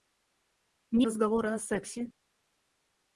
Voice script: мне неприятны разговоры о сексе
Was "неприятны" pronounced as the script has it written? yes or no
no